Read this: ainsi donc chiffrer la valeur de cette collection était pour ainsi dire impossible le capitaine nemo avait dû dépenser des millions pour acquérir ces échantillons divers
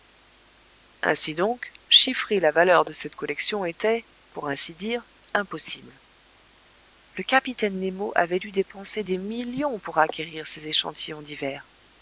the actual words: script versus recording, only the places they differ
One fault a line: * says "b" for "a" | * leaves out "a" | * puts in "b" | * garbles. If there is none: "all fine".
all fine